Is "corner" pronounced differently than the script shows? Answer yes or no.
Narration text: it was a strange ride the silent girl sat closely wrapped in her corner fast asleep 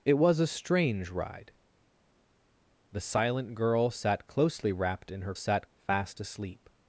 yes